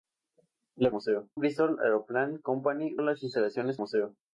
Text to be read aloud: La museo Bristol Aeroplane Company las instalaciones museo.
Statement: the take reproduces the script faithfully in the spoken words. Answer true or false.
true